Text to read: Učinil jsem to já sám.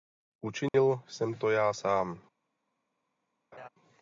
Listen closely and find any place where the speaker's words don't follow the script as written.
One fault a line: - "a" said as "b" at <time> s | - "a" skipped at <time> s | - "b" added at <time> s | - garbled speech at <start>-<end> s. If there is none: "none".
none